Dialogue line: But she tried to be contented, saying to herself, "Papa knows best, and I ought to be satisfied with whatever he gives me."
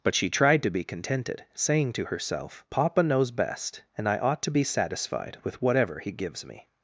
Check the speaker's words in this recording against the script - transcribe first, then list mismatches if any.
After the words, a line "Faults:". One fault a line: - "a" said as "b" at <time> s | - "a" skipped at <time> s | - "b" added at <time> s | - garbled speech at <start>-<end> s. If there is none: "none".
But she tried to be contented, saying to herself, "Papa knows best, and I ought to be satisfied with whatever he gives me."
Faults:
none